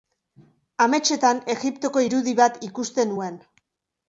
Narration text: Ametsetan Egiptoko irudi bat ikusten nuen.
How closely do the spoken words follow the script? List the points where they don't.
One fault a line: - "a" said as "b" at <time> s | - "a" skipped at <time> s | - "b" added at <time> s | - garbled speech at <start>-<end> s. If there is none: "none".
none